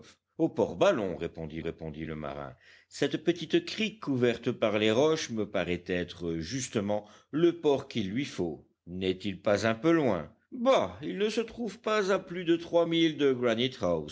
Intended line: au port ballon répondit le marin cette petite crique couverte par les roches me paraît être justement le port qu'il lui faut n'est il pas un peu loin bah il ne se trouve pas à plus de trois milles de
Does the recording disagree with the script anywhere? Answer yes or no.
yes